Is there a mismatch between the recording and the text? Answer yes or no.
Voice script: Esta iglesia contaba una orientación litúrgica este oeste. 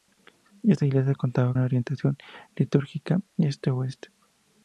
no